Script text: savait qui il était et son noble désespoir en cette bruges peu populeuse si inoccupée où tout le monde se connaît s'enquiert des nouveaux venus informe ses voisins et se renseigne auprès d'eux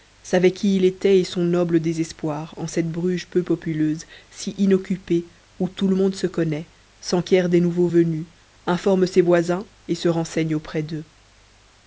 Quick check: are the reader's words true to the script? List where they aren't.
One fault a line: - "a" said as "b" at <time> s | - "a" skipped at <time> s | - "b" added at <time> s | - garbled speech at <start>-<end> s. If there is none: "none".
none